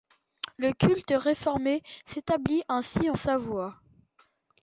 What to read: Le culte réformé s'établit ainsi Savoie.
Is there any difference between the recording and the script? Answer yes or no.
no